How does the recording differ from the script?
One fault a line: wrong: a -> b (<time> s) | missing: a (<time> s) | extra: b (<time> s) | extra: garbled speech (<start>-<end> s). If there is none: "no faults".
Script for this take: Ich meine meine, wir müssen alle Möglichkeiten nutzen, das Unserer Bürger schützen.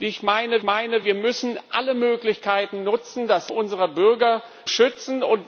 no faults